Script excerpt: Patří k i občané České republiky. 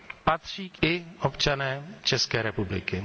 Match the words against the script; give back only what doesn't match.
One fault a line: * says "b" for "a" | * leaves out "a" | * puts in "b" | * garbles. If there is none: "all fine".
all fine